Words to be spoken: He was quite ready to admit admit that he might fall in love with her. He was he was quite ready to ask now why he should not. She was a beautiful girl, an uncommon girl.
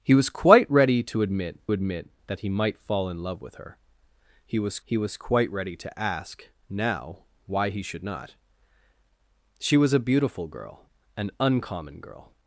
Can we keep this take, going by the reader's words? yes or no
yes